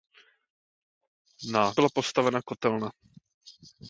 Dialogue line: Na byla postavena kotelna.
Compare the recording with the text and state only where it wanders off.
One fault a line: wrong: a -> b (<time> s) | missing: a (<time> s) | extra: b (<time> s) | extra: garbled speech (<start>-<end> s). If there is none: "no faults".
no faults